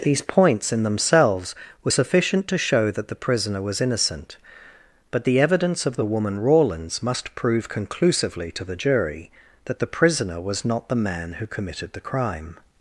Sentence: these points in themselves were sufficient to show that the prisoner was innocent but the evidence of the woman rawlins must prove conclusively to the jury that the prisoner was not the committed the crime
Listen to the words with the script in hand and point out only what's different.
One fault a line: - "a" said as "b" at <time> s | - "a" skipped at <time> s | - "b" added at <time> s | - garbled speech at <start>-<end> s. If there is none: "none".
- "man who" added at 10.9 s